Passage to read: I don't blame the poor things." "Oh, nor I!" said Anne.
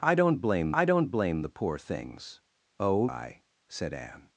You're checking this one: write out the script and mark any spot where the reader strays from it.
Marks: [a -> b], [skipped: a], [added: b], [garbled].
I don't blame [added: I don't blame] the poor things." "Oh, [skipped: nor] I!" said Anne.